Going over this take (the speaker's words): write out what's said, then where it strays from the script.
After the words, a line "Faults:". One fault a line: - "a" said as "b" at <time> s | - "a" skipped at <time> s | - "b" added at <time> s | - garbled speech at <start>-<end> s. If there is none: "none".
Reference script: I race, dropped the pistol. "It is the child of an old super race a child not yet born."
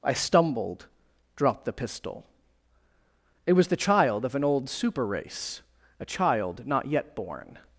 I stumbled, dropped the pistol. "It was the child of an old super race a child not yet born."
Faults:
- "race" said as "stumbled" at 0.1 s
- "is" said as "was" at 3.5 s